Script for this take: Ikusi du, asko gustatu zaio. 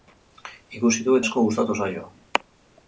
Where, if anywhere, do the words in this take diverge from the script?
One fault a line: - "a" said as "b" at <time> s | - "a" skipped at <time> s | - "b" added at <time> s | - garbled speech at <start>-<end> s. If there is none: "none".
none